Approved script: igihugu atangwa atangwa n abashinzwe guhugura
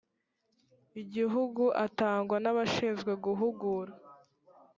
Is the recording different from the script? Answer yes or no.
yes